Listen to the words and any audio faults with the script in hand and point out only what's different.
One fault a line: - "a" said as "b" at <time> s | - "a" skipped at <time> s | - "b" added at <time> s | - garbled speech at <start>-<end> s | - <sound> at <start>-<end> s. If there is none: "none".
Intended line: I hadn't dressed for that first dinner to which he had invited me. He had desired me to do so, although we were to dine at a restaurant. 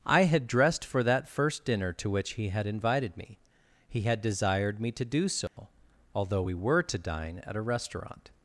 - "hadn't" said as "had" at 0.2 s
- dropout at 5.5-5.6 s